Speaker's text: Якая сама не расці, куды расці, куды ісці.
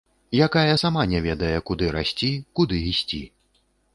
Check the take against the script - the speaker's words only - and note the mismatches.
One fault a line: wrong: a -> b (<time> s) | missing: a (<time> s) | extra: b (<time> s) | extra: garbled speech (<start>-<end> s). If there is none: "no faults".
wrong: расці -> ведае (1.2 s)